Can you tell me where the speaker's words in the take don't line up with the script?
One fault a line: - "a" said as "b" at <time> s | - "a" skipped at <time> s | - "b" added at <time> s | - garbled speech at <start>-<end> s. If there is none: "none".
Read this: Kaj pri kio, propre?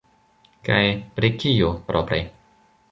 none